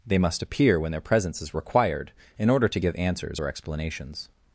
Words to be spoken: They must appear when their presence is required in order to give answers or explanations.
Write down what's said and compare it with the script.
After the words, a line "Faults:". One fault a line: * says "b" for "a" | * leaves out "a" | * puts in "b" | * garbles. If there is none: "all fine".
They must appear when their presence is required in order to give answers or explanations.
Faults:
all fine